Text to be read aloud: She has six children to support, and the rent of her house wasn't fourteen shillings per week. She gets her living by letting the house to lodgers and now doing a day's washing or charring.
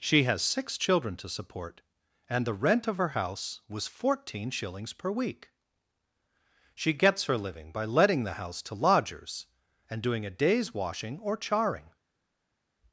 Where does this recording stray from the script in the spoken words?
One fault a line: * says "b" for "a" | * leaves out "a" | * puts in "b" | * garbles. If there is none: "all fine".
* says "was" for "wasn't"
* leaves out "now"